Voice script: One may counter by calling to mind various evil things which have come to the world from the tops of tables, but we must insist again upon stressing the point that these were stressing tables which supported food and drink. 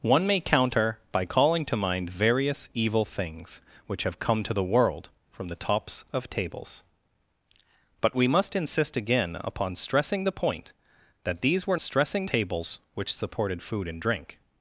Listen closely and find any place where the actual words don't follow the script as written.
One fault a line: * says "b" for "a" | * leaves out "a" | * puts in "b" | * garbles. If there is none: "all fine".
all fine